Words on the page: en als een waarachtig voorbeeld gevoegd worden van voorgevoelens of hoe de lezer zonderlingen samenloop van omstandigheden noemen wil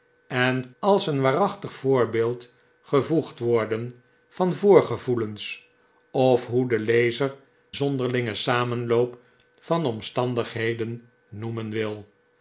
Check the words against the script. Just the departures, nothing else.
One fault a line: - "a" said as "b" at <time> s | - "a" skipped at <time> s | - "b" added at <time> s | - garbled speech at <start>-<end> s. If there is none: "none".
none